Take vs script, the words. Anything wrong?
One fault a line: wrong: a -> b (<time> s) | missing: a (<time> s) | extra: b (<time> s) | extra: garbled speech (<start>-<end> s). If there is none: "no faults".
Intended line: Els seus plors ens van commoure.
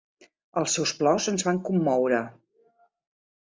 no faults